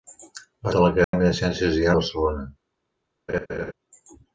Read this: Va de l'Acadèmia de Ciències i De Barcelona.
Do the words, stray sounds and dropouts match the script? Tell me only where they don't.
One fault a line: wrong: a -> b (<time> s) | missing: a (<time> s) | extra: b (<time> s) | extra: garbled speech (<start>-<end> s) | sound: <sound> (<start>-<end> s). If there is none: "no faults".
sound: dropout (1.0-1.1 s)
sound: laugh (3.3-3.7 s)